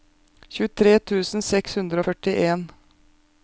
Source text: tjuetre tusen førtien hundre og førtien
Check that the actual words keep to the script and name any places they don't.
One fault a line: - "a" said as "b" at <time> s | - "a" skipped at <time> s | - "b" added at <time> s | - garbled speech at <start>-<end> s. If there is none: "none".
- "førtien" said as "seks" at 1.5 s